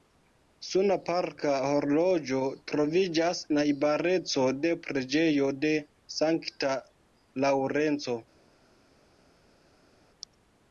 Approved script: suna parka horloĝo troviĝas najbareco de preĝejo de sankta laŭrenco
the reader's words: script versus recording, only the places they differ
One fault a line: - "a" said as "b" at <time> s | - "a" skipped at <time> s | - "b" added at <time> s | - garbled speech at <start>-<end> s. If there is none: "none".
none